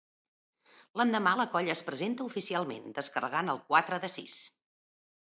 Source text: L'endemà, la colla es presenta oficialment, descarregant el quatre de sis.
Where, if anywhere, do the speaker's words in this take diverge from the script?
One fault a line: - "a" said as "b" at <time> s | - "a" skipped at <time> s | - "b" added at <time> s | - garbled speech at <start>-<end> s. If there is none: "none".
none